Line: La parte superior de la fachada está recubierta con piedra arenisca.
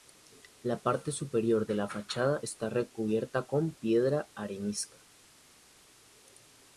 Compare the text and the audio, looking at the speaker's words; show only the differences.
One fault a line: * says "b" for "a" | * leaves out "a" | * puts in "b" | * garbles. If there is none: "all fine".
all fine